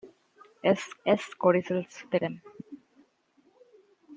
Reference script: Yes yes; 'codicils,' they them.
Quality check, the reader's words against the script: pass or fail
pass